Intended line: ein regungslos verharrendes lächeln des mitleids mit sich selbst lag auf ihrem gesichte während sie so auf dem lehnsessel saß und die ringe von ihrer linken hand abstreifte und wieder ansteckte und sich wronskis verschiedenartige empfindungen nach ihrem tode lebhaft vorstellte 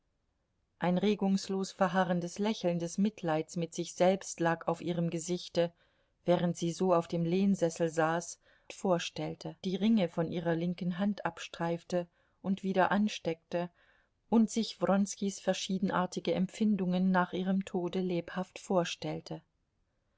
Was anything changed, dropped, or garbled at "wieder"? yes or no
no